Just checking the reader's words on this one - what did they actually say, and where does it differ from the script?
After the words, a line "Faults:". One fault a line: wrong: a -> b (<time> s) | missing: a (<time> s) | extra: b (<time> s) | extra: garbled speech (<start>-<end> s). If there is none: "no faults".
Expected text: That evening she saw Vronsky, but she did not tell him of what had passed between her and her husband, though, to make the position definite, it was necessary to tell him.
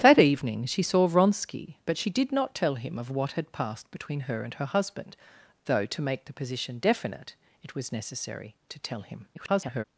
That evening she saw Vronsky, but she did not tell him of what had passed between her and her husband, though, to make the position definite, it was necessary to tell him. [garbled]
Faults:
extra: garbled speech (9.3-9.8 s)